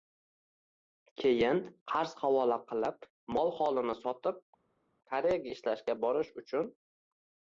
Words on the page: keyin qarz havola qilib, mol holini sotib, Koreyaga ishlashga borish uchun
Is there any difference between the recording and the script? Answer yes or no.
no